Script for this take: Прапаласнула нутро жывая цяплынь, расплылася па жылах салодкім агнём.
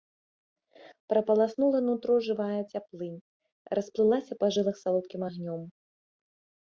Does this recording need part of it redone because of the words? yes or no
no